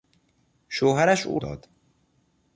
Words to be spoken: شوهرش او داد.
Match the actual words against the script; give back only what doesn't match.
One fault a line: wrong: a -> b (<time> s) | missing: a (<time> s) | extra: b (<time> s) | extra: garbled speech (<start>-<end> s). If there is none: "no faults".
no faults